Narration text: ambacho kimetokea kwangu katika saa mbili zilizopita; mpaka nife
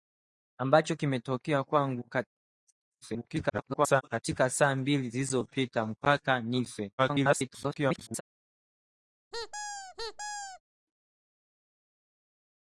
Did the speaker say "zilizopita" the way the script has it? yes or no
yes